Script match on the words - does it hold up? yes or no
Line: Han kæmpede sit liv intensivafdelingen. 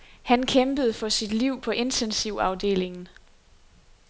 no